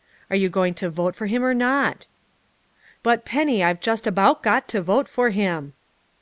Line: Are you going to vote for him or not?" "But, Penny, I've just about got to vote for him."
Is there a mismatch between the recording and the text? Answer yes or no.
no